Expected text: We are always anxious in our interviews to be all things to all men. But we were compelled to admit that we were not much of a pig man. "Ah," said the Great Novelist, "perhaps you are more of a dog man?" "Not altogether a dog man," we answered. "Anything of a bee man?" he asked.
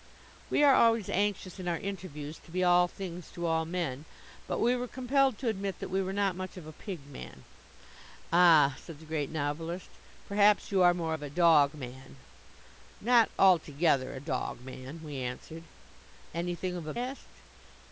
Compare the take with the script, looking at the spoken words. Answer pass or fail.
fail